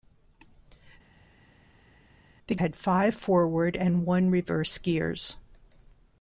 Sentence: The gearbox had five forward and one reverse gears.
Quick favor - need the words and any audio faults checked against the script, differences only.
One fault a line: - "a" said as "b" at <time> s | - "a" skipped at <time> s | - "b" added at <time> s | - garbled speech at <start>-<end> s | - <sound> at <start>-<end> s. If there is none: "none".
- "gearbox" skipped at 2.6 s